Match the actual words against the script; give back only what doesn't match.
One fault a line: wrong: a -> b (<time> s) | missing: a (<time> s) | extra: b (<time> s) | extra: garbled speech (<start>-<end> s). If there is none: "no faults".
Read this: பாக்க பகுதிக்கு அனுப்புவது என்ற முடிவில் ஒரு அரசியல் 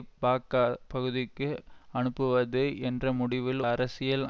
missing: ஒரு (3.6 s)